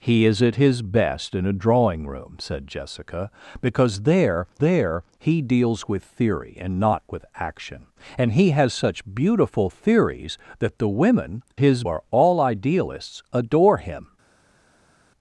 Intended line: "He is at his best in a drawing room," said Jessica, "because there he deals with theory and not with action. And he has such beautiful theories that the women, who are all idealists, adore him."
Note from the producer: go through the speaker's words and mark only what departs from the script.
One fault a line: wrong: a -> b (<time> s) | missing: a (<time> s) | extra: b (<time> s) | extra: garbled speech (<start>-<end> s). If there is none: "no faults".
extra: there (4.6 s)
wrong: who -> his (11.6 s)